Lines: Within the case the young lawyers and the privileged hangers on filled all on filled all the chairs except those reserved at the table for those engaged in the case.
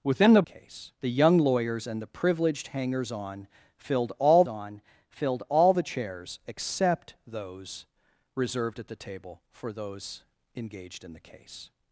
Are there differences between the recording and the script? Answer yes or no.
no